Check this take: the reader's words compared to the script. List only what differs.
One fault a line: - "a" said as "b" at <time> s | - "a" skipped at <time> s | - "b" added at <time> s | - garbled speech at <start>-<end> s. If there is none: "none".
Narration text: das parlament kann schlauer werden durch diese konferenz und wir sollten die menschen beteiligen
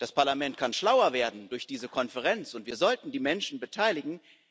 none